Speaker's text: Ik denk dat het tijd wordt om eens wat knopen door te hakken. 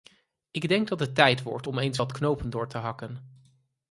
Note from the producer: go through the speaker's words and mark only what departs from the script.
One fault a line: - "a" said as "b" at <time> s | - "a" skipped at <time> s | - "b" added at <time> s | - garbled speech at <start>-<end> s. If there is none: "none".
none